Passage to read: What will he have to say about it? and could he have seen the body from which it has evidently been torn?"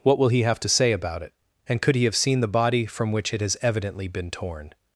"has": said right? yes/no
yes